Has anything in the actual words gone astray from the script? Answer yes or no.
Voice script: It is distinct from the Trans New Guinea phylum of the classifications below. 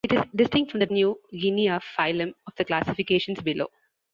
yes